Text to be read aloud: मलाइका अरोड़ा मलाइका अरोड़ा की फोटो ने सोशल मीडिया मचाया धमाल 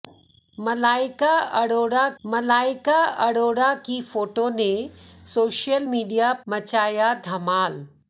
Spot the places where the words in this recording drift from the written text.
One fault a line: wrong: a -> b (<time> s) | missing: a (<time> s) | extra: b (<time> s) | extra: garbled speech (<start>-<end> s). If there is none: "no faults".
no faults